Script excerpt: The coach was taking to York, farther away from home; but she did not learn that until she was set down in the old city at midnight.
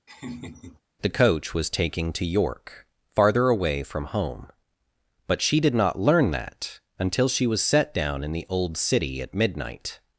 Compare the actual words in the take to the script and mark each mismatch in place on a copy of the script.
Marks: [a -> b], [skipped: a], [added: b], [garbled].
The coach was taking to York, farther away from home; but she did not learn that until she was set down in the old city at midnight.